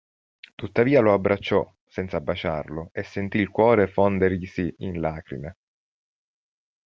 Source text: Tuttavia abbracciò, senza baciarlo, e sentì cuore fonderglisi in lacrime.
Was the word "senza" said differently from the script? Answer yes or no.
no